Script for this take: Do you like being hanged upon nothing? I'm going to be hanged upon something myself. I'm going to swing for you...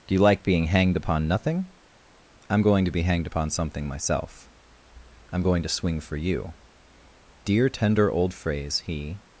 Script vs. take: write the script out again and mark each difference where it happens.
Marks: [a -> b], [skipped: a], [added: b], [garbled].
Do you like being hanged upon nothing? I'm going to be hanged upon something myself. I'm going to swing for you... [added: Dear tender old phrase he]